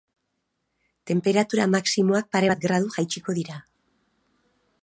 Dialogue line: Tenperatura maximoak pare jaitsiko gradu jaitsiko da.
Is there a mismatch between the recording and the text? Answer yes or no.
yes